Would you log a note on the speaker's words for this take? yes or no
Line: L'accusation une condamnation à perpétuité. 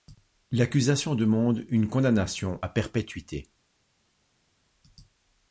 yes